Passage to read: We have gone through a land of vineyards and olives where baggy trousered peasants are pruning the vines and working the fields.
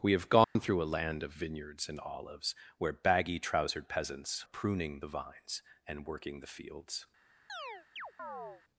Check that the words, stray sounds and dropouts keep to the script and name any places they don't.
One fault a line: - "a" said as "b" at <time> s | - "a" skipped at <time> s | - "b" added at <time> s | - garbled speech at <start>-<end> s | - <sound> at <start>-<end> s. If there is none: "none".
- dropout at 0.4-0.6 s
- "are" skipped at 4.5 s
- chirp at 7.5-8.6 s